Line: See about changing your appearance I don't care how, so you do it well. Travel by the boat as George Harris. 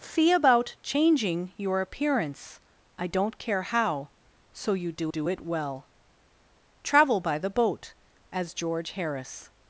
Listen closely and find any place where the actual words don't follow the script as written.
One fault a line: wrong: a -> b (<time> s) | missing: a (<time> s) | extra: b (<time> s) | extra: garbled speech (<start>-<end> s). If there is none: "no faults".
extra: do (5.1 s)